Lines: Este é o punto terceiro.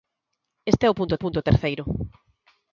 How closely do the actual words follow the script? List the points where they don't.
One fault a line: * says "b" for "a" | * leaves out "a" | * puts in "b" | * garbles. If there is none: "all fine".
* puts in "punto"